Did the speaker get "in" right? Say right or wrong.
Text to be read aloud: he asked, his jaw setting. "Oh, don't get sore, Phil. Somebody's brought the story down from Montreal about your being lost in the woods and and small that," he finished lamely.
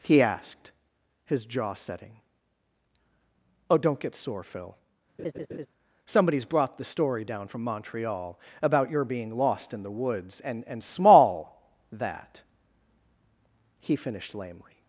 right